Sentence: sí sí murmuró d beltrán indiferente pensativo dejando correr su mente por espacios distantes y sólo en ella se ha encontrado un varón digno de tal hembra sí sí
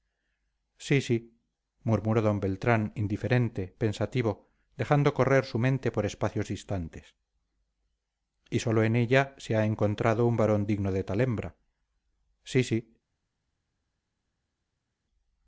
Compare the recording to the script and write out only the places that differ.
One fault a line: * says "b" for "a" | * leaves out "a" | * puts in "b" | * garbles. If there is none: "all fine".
all fine